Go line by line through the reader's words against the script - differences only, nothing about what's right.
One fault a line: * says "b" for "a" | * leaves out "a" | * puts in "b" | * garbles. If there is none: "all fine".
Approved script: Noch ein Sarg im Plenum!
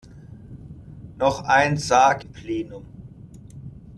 all fine